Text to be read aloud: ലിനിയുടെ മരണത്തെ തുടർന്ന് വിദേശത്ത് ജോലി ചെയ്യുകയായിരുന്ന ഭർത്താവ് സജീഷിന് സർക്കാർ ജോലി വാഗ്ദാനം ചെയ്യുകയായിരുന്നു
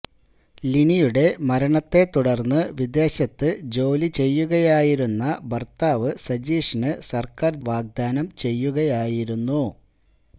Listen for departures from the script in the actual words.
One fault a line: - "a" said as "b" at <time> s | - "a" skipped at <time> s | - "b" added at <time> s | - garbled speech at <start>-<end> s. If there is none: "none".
- "ജോലി" skipped at 7.5 s